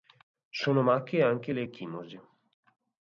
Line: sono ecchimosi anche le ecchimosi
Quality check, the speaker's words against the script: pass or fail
fail